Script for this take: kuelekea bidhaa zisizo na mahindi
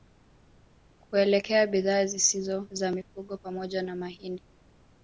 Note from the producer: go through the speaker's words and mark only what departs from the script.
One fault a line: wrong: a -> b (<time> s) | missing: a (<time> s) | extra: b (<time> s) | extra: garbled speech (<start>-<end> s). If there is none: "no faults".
extra: za mifugo pamoja (2.7 s)